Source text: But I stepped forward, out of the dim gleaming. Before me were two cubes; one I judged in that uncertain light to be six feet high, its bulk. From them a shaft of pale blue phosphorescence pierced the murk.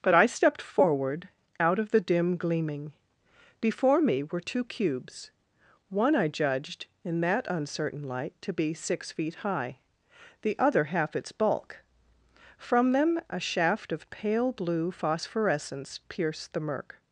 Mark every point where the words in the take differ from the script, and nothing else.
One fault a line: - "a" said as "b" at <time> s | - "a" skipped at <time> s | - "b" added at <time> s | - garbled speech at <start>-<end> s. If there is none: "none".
- "the other half" added at 10.4 s